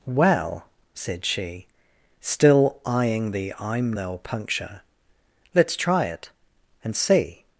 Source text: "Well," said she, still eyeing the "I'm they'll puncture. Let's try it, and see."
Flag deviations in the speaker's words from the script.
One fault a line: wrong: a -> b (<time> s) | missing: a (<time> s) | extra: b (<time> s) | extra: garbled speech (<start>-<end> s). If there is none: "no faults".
no faults